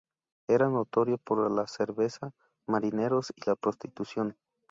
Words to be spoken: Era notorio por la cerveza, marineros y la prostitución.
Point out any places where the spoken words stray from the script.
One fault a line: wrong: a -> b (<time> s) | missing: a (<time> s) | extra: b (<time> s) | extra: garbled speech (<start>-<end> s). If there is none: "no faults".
no faults